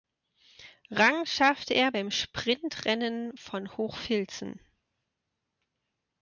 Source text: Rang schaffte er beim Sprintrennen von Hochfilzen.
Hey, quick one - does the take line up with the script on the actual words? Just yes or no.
yes